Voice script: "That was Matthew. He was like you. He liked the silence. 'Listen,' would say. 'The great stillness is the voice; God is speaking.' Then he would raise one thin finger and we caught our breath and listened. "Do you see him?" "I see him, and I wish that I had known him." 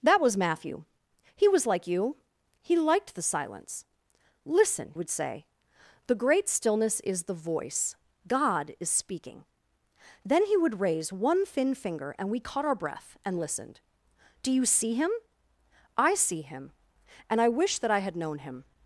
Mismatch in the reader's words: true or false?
false